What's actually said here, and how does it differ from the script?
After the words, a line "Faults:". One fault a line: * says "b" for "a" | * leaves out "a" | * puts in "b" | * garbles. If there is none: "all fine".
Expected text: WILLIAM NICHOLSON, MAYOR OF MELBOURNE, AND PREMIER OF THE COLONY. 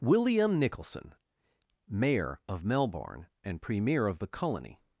WILLIAM NICHOLSON, MAYOR OF MELBOURNE, AND PREMIER OF THE COLONY.
Faults:
all fine